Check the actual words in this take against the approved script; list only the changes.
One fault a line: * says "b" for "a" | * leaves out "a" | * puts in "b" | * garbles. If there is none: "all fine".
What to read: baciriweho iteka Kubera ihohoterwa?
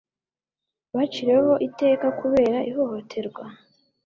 all fine